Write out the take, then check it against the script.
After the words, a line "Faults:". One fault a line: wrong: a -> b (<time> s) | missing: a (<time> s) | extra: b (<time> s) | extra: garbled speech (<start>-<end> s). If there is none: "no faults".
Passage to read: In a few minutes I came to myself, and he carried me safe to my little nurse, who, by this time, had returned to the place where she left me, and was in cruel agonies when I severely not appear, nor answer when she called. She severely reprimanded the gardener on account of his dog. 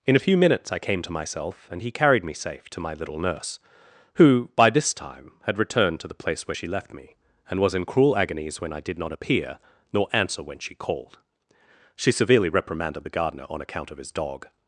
In a few minutes I came to myself, and he carried me safe to my little nurse, who, by this time, had returned to the place where she left me, and was in cruel agonies when I did not appear, nor answer when she called. She severely reprimanded the gardener on account of his dog.
Faults:
wrong: severely -> did (8.8 s)